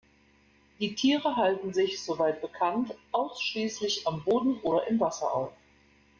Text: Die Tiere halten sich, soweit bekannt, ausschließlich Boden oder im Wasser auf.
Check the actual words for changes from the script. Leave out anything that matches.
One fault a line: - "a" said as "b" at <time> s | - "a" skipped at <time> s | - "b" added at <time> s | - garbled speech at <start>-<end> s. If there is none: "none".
- "am" added at 4.1 s